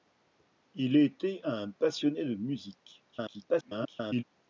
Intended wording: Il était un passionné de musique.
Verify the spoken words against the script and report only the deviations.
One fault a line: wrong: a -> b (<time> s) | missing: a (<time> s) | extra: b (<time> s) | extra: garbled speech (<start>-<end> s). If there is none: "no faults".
extra: garbled speech (3.1-4.2 s)